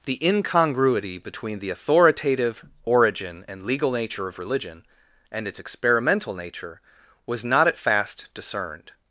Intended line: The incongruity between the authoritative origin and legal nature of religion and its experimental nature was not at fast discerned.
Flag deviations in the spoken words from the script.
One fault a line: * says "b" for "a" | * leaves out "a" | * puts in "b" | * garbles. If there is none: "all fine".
all fine